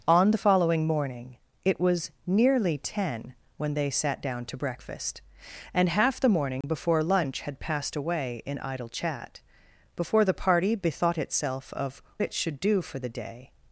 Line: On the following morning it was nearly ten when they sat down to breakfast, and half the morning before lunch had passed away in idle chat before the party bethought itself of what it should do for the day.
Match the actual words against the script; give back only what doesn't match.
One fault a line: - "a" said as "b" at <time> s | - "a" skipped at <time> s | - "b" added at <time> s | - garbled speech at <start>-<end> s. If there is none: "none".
- "what" skipped at 12.0 s